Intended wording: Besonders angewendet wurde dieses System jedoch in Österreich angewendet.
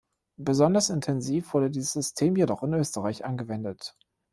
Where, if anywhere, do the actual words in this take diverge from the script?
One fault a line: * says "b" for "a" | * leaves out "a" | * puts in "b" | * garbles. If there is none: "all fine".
* says "intensiv" for "angewendet"